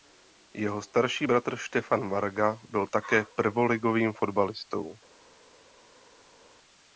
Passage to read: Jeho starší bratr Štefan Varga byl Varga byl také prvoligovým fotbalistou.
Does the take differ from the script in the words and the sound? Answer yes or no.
yes